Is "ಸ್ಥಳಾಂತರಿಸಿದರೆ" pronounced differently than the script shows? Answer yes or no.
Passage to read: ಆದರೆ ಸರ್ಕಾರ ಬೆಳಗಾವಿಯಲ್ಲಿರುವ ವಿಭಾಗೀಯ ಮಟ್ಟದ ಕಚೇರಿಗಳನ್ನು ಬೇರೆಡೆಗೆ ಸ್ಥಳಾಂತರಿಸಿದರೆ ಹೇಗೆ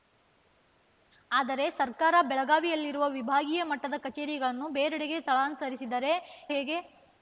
no